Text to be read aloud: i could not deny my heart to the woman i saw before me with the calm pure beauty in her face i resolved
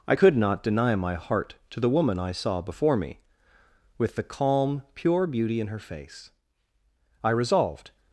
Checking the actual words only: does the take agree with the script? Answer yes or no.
yes